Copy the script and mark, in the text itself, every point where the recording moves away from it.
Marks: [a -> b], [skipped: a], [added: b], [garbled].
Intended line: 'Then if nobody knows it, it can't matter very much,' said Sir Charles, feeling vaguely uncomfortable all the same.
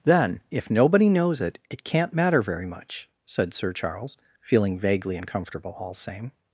'Then if nobody knows it, it can't matter very much,' said Sir Charles, feeling vaguely uncomfortable all [skipped: the] same.